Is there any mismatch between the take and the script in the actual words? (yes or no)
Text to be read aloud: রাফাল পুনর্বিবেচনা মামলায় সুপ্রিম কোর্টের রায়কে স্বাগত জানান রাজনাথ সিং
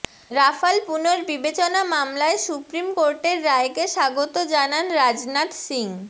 no